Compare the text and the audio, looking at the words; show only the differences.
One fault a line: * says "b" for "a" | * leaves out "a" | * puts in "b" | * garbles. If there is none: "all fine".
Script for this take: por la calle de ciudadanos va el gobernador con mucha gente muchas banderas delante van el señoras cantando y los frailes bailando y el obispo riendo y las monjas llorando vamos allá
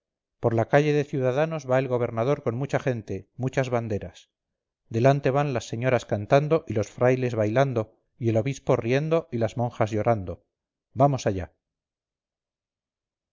* says "las" for "el"